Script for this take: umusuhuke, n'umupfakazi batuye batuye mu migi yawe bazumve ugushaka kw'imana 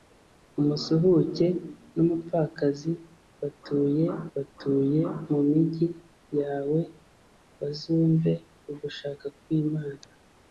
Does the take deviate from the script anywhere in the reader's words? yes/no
no